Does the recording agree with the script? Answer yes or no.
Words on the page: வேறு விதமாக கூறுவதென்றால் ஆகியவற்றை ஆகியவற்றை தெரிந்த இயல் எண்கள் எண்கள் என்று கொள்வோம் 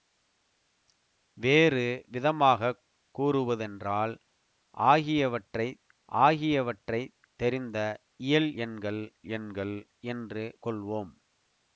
yes